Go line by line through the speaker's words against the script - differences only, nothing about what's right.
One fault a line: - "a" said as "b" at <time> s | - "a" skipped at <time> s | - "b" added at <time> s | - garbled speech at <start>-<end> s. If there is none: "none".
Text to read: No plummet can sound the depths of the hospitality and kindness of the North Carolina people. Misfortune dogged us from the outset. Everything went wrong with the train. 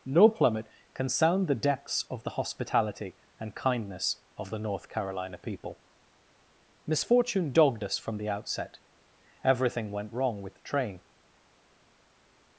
none